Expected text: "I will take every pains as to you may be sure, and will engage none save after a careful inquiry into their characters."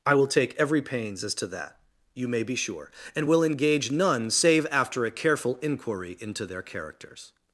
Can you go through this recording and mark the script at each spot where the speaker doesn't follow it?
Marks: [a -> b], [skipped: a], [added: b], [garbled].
"I will take every pains as to [added: that] you may be sure, and will engage none save after a careful inquiry into their characters."